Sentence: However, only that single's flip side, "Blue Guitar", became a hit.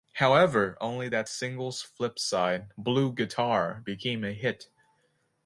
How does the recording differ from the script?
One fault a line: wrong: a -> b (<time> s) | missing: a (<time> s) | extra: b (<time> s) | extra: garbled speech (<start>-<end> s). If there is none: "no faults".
no faults